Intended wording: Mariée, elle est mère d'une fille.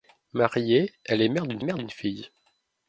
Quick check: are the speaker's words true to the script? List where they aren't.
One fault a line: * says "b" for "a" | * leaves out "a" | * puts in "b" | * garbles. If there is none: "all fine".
* puts in "mère d'une"